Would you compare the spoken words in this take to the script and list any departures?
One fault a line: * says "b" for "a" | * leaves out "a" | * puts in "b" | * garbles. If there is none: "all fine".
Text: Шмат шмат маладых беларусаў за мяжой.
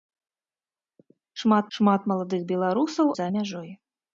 all fine